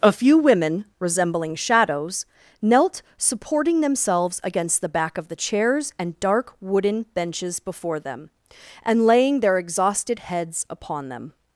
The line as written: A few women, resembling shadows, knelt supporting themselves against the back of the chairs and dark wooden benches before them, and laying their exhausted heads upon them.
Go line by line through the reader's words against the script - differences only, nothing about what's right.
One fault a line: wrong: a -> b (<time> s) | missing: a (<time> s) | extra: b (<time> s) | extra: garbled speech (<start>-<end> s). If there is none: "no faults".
no faults